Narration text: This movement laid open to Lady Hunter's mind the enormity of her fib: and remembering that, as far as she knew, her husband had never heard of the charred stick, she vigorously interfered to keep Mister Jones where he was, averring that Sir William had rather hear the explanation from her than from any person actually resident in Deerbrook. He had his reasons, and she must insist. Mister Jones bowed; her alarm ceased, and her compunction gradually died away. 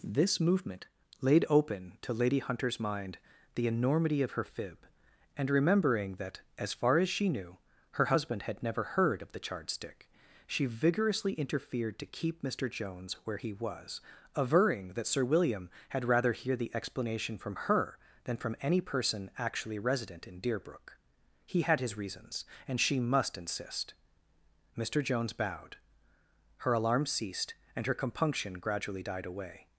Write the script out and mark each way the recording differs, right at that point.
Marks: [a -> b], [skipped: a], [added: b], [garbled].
This movement laid open to Lady Hunter's mind the enormity of her fib: and remembering that, as far as she knew, her husband had never heard of the charred stick, she vigorously interfered to keep Mister Jones where he was, averring that Sir William had rather hear the explanation from her than from any person actually resident in Deerbrook. He had his reasons, and she must insist. Mister Jones bowed; her alarm ceased, and her compunction gradually died away.